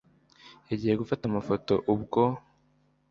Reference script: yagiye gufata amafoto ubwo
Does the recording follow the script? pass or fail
pass